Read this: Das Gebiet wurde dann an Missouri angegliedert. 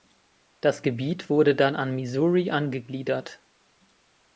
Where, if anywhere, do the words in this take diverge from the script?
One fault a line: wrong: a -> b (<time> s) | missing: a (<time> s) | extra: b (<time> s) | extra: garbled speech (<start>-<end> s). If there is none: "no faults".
no faults